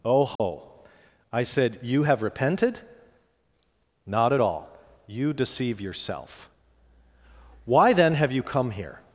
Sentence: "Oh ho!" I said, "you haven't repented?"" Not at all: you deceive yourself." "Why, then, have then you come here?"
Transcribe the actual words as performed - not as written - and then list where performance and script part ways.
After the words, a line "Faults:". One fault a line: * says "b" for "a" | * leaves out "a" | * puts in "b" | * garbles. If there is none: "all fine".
"Oh ho!" I said, "you have repented?"" Not at all: you deceive yourself." "Why, then, have you come here?"
Faults:
* says "have" for "haven't"
* leaves out "then"